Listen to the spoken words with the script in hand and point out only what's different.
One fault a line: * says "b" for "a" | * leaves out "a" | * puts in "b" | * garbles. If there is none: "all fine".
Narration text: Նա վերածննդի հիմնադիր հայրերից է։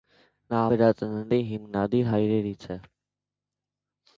all fine